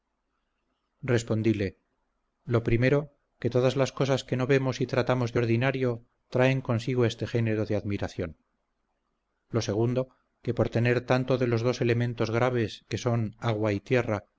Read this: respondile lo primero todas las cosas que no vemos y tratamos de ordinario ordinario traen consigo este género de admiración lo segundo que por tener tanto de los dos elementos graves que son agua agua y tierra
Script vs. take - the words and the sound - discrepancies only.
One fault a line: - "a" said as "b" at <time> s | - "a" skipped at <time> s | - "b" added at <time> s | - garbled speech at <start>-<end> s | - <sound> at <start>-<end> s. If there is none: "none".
- "que" added at 3.4 s
- "ordinario" skipped at 6.0 s
- "agua" skipped at 13.7 s